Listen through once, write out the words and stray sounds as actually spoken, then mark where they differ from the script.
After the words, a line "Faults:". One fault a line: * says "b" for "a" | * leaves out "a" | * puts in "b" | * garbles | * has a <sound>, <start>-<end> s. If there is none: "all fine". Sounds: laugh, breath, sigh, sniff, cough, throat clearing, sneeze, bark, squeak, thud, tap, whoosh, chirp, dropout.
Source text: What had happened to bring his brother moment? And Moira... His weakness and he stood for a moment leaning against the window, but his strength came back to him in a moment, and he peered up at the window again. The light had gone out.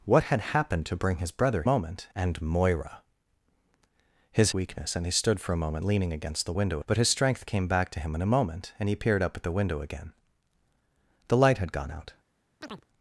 What had happened to bring his brother moment? And Moira... His weakness and he stood for a moment leaning against the window, but his strength came back to him in a moment, and he peered up at the window again. The light had gone out.
Faults:
* has a chirp, 12.6-12.9 s